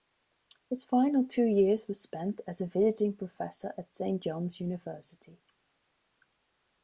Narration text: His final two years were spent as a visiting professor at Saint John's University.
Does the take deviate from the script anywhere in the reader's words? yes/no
no